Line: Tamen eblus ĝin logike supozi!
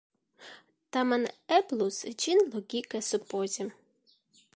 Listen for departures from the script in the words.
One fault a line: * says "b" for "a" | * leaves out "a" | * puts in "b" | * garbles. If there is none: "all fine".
all fine